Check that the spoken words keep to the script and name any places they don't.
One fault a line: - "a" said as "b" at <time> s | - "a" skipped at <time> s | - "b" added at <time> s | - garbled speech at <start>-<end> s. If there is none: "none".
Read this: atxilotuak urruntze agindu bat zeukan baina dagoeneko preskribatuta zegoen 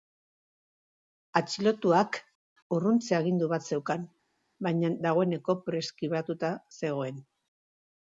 none